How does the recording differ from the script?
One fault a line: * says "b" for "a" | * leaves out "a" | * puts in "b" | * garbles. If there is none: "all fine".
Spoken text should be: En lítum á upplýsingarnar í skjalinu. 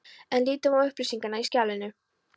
all fine